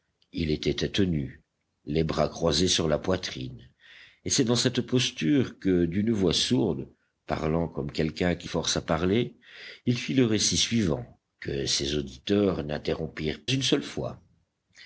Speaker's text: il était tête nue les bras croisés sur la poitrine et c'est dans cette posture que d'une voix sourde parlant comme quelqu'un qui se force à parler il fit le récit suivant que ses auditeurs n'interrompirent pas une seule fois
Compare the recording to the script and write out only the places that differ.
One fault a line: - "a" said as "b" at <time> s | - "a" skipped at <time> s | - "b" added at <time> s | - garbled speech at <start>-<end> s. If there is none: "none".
- "se" skipped at 8.5 s
- "pas" skipped at 13.4 s